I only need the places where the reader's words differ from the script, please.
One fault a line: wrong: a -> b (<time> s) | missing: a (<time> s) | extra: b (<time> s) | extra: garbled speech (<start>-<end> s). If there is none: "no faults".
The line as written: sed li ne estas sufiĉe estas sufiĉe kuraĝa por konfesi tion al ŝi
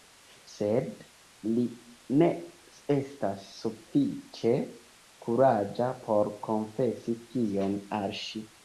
missing: estas sufiĉe (4.6 s)